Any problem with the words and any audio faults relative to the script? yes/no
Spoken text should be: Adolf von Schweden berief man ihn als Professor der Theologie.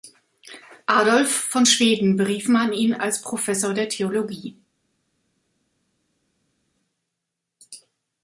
no